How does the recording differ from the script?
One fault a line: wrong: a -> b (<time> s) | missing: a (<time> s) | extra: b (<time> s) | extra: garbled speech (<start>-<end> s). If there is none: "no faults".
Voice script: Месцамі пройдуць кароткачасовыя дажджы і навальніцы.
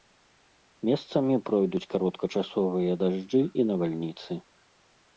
no faults